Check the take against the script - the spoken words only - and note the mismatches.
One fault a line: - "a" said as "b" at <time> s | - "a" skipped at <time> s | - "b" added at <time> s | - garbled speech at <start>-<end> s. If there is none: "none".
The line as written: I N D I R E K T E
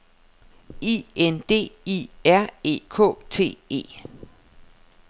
none